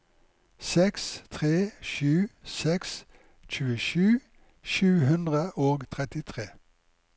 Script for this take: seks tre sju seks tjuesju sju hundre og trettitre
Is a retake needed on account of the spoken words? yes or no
no